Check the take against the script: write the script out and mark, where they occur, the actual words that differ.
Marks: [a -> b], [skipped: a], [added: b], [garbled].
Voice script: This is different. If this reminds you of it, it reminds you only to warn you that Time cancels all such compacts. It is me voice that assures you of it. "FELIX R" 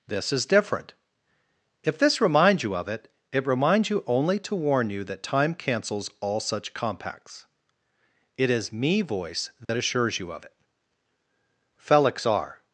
This is different. If this reminds you of it, it reminds you only to warn you that Time cancels all such compacts. It is me voice that assures you of it. "FELIX R"